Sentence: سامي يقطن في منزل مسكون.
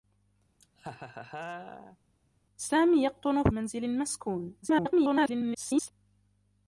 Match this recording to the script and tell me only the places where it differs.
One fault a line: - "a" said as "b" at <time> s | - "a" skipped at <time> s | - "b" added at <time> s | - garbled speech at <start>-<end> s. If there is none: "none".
- "في" skipped at 3.5 s
- garbled speech at 4.6-5.9 s